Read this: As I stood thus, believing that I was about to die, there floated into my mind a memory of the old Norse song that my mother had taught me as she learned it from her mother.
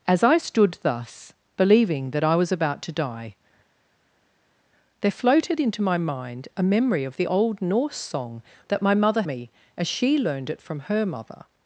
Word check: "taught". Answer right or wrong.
wrong